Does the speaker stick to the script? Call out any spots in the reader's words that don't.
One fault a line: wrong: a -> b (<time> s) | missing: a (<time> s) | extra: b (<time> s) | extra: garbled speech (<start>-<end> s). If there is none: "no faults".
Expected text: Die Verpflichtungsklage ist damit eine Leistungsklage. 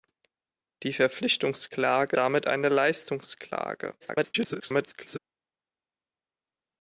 missing: ist (2.2 s)
extra: garbled speech (4.0-5.2 s)